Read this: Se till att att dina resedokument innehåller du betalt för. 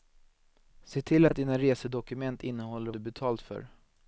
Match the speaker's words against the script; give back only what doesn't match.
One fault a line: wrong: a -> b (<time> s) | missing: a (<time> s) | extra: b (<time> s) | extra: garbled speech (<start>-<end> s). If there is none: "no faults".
no faults